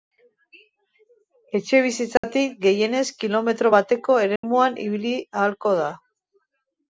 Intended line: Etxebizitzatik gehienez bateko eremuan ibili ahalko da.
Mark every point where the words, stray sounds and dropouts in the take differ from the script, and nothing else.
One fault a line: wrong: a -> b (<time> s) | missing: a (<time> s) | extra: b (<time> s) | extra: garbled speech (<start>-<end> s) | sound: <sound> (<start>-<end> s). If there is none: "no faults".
sound: dropout (2.2-2.2 s)
extra: kilometro (3.2 s)
sound: dropout (4.4-4.4 s)